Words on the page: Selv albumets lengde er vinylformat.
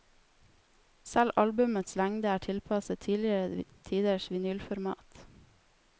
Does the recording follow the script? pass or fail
fail